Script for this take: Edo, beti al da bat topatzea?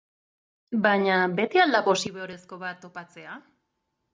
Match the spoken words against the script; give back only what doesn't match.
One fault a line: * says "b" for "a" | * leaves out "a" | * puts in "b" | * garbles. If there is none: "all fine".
* says "Baina" for "Edo"
* puts in "posiborezko"